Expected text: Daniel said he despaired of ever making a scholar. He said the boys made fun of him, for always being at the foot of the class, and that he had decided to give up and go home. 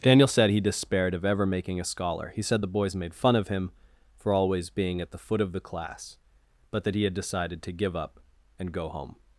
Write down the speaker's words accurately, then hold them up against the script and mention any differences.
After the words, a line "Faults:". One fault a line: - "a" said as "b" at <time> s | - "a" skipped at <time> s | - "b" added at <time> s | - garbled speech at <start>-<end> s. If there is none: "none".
Daniel said he despaired of ever making a scholar. He said the boys made fun of him, for always being at the foot of the class, but that he had decided to give up and go home.
Faults:
- "and" said as "but" at 6.7 s